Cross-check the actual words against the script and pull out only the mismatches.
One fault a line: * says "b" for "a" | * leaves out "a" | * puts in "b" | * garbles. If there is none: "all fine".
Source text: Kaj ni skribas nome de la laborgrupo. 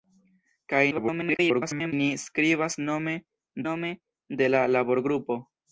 * garbles
* puts in "nome"